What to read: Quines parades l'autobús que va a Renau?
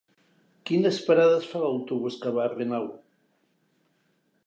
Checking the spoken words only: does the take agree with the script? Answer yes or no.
no